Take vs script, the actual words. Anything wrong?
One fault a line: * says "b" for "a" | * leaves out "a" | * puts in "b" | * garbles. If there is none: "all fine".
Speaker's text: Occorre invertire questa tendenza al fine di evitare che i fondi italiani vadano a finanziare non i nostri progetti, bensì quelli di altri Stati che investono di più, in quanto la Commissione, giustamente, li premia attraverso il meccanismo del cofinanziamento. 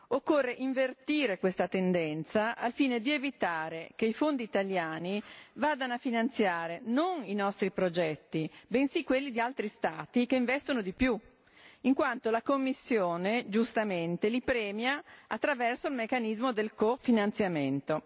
all fine